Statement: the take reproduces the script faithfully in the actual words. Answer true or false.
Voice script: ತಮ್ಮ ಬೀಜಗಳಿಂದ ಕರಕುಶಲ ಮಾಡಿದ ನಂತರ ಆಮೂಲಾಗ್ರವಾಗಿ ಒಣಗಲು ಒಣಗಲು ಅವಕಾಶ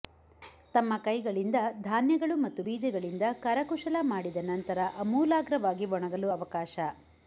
false